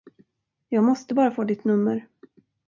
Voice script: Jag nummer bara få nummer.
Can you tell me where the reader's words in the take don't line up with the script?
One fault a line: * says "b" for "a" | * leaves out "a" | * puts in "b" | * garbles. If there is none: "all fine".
* says "måste" for "nummer"
* puts in "ditt"